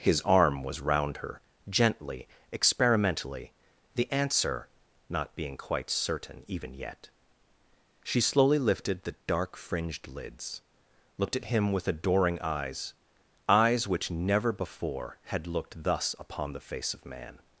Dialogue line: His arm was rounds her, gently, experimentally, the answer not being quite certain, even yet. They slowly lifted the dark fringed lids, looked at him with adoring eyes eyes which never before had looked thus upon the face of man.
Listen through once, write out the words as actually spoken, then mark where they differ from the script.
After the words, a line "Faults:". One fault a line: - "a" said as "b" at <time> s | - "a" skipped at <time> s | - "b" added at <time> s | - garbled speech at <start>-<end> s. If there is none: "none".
His arm was round her, gently, experimentally, the answer not being quite certain, even yet. She slowly lifted the dark fringed lids, looked at him with adoring eyes eyes which never before had looked thus upon the face of man.
Faults:
- "rounds" said as "round" at 0.8 s
- "They" said as "She" at 8.0 s